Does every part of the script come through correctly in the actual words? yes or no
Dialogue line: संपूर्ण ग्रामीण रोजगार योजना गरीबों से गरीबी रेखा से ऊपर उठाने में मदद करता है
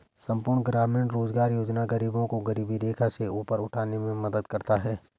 no